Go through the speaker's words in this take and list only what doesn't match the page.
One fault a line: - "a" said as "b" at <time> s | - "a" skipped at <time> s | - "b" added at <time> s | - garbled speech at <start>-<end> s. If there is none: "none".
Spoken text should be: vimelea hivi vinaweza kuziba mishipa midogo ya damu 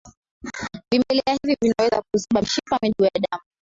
none